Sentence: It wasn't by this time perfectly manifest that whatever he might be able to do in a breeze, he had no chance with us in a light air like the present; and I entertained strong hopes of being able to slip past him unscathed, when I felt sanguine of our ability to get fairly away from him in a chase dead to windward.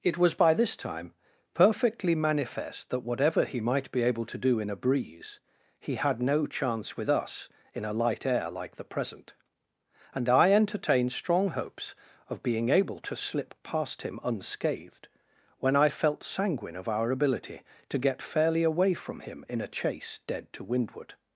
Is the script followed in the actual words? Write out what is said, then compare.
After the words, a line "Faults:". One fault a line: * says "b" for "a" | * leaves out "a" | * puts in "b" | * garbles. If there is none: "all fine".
It was by this time perfectly manifest that whatever he might be able to do in a breeze, he had no chance with us in a light air like the present; and I entertained strong hopes of being able to slip past him unscathed, when I felt sanguine of our ability to get fairly away from him in a chase dead to windward.
Faults:
* says "was" for "wasn't"